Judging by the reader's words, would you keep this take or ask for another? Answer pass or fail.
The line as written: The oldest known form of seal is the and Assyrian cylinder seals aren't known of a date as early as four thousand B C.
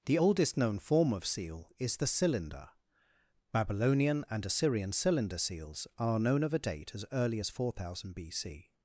fail